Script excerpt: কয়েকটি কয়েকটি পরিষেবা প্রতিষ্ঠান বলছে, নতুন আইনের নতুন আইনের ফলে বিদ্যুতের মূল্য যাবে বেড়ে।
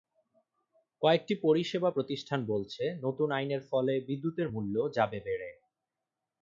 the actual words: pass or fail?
fail